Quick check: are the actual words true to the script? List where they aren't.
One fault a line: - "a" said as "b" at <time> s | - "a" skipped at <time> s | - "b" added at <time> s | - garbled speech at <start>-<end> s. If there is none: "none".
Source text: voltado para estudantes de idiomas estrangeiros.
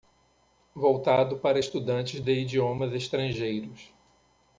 none